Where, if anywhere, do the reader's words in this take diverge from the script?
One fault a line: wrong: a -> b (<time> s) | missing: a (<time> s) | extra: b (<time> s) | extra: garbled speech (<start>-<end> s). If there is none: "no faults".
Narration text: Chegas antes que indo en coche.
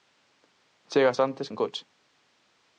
missing: que indo (1.5 s)